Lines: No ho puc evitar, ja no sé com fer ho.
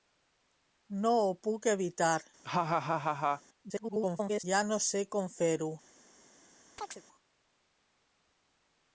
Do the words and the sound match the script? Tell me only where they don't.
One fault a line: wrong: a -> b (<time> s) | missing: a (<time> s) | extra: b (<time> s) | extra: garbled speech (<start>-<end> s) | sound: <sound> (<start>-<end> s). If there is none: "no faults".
sound: laugh (2.4-3.4 s)
extra: garbled speech (3.7-4.4 s)
sound: chirp (6.8-7.0 s)